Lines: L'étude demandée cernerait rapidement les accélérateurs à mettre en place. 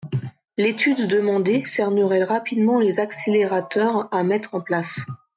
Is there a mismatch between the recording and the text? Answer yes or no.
no